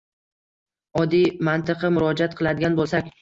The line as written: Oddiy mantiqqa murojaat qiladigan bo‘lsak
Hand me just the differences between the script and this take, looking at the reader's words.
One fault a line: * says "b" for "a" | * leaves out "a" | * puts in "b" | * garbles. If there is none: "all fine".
all fine